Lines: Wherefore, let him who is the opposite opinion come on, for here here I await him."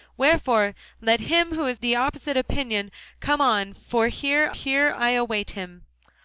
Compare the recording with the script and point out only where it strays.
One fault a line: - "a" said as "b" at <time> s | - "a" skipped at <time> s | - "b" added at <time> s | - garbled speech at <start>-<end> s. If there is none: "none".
none